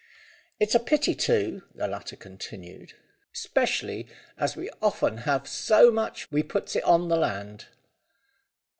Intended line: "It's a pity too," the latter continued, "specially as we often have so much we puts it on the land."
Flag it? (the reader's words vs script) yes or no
no